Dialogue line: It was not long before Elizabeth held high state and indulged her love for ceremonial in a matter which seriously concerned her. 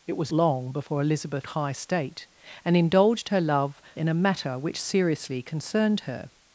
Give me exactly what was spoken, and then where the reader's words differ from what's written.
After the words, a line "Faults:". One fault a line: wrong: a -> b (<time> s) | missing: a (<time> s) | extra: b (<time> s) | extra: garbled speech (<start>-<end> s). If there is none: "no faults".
It was long before Elizabeth high state and indulged her love in a matter which seriously concerned her.
Faults:
missing: not (0.3 s)
missing: held (1.5 s)
missing: for ceremonial (3.8 s)